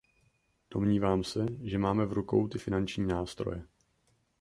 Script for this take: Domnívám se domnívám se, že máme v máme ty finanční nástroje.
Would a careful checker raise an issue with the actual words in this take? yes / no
yes